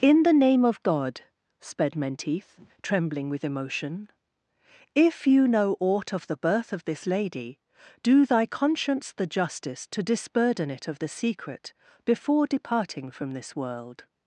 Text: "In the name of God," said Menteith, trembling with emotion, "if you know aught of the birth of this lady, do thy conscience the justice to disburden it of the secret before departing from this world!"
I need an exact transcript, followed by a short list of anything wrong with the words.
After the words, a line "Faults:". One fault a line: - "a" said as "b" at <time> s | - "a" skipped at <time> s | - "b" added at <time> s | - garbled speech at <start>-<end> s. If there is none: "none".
"In the name of God," sped Menteith, trembling with emotion, "if you know aught of the birth of this lady, do thy conscience the justice to disburden it of the secret before departing from this world!"
Faults:
- "said" said as "sped" at 1.6 s